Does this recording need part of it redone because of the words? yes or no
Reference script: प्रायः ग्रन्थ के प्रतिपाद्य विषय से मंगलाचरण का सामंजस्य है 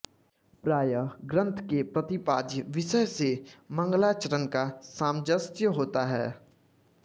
yes